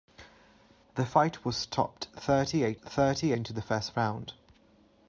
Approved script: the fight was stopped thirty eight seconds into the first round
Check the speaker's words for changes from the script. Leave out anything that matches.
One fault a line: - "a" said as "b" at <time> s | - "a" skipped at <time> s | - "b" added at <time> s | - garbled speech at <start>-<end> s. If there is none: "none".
- "seconds" said as "thirty" at 2.7 s